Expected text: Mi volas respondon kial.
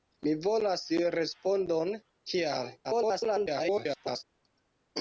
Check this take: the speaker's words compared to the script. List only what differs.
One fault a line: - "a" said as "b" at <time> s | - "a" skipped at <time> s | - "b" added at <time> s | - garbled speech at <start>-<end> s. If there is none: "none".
- garbled speech at 2.8-4.2 s